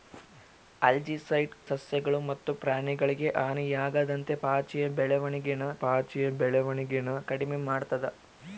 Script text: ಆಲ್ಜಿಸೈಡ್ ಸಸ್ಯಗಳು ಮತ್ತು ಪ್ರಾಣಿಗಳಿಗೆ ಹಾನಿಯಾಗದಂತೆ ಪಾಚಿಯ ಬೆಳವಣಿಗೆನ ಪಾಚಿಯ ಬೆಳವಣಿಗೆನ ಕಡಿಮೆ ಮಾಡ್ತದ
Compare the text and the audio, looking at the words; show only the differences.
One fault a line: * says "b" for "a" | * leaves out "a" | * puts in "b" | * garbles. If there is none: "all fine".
all fine